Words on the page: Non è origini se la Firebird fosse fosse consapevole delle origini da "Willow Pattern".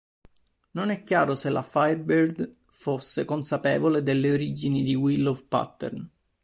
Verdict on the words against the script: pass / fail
fail